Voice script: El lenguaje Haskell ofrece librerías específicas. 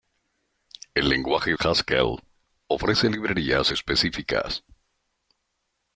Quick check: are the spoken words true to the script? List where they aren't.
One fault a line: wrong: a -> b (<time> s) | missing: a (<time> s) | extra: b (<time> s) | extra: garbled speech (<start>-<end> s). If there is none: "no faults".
no faults